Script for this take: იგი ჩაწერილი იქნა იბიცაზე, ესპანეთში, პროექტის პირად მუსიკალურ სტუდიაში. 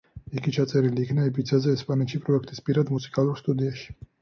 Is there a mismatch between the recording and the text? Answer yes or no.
no